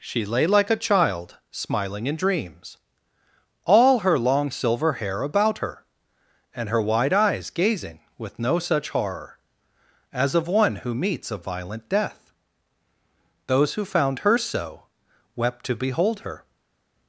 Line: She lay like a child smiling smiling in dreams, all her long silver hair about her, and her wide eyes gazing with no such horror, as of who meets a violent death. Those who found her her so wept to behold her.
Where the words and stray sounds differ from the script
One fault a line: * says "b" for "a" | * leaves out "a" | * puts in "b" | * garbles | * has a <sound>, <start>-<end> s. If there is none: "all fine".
* leaves out "smiling"
* puts in "one"
* leaves out "her"